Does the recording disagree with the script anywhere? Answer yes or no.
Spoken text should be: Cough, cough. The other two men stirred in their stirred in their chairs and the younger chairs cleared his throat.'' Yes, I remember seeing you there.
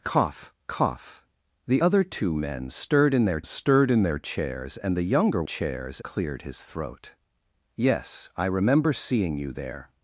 no